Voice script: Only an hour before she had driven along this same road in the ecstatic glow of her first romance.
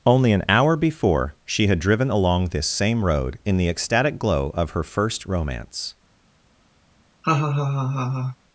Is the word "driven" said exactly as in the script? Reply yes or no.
yes